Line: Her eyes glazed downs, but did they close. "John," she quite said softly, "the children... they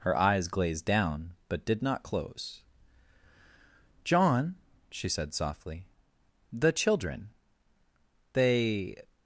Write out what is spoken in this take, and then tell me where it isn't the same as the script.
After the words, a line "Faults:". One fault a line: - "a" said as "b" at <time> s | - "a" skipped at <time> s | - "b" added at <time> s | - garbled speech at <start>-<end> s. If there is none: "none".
Her eyes glazed down, but did not close. "John," she said softly, "the children... they
Faults:
- "downs" said as "down" at 0.8 s
- "they" said as "not" at 1.8 s
- "quite" skipped at 5.1 s